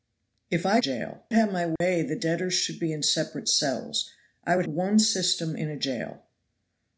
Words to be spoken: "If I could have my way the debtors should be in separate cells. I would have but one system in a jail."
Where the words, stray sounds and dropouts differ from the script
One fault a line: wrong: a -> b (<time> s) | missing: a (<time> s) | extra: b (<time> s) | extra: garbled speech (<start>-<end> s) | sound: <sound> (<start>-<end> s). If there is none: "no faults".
wrong: could -> jail (0.8 s)
sound: dropout (1.8-1.8 s)
missing: have but (4.7 s)